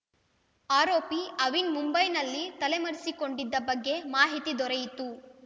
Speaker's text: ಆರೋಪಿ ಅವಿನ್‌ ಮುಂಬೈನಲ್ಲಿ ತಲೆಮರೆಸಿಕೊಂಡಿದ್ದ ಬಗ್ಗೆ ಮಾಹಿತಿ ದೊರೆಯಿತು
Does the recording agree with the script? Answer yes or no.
yes